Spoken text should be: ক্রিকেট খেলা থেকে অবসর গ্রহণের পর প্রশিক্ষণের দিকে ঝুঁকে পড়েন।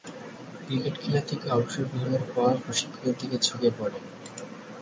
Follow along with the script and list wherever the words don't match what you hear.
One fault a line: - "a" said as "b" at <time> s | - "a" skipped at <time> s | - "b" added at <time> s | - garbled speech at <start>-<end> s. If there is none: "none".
none